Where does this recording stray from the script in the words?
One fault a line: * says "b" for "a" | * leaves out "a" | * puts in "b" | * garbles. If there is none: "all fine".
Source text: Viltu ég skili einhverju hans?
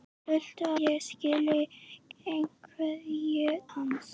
all fine